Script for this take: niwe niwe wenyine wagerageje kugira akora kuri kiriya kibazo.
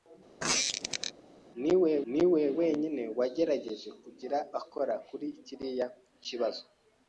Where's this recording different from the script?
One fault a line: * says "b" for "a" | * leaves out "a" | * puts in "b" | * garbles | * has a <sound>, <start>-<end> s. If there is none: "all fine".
* has a squeak, 0.4-1.1 s